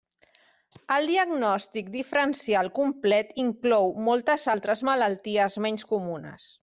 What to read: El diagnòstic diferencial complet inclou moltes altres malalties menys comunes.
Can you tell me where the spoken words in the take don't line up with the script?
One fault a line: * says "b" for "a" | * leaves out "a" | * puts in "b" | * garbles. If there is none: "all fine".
all fine